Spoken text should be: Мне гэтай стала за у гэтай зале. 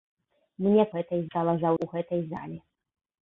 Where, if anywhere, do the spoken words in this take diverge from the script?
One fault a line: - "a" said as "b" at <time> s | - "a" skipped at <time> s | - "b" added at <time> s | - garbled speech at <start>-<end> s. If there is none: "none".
none